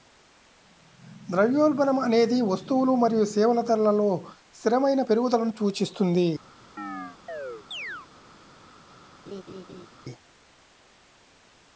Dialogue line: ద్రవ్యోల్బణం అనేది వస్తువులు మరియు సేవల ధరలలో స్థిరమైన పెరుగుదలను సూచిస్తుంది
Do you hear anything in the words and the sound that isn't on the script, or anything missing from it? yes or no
yes